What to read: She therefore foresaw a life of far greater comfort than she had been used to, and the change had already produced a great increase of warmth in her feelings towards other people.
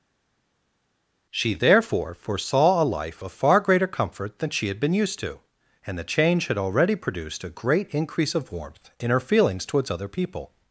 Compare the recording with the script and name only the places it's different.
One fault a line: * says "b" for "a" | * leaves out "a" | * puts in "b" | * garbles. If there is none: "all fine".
all fine